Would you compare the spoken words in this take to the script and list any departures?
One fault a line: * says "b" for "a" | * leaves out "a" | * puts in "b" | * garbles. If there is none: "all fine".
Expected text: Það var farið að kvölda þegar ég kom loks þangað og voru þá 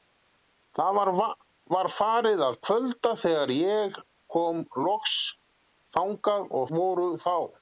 all fine